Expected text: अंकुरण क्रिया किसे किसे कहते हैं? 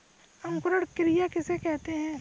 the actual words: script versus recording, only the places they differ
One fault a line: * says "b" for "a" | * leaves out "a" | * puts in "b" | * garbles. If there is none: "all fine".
* leaves out "किसे"